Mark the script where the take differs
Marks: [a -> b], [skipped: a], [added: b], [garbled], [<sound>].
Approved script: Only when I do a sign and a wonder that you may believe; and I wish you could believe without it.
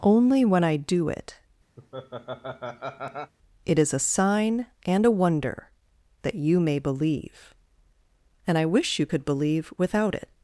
Only when I do [added: it it is] [laugh] a sign and a wonder that you may believe; and I wish you could believe without it.